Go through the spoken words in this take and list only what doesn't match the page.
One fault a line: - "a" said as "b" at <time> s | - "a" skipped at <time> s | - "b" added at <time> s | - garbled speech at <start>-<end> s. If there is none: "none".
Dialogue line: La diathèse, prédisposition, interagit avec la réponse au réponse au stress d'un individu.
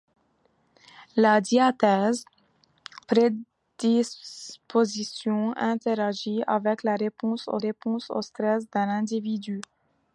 none